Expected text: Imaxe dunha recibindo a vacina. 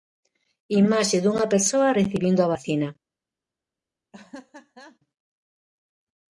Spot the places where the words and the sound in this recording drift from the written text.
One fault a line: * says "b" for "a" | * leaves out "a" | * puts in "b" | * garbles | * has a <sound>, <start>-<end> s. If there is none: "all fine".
* puts in "persoa"
* has a laugh, 4.1-5.0 s